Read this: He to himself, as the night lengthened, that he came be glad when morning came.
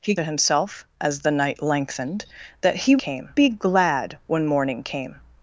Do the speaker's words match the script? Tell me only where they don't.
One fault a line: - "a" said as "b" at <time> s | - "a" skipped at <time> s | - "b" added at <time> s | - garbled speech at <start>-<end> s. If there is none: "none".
none